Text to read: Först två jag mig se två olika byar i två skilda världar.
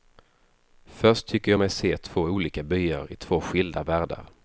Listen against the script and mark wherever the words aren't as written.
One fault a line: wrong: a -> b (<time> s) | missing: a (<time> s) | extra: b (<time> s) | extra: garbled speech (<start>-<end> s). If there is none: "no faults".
wrong: två -> tycker (1.3 s)